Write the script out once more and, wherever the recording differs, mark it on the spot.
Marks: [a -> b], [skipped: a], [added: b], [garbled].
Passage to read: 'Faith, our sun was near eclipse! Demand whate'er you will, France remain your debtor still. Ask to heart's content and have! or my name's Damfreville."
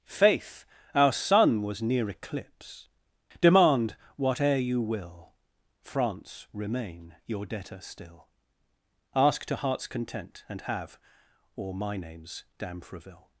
'Faith, our sun was near eclipse! Demand whate'er you will, France remain your debtor still. Ask to heart's content and have! or my name's Damfreville."